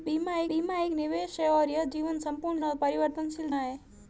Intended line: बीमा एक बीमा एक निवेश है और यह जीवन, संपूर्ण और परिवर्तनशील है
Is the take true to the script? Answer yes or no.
yes